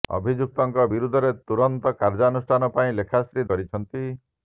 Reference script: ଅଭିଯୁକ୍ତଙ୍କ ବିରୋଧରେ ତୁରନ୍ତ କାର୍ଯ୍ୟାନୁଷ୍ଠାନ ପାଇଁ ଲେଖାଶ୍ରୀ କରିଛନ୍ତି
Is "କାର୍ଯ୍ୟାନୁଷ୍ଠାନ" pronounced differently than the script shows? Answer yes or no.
no